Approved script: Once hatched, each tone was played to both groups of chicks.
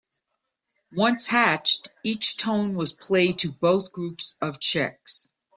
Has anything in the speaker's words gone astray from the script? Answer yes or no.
no